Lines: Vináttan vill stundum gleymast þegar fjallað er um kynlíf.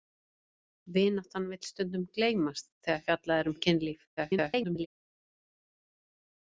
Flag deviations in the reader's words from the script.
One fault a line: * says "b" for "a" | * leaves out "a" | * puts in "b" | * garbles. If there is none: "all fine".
* garbles